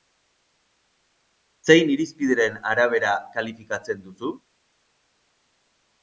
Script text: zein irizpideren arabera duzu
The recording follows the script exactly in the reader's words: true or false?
false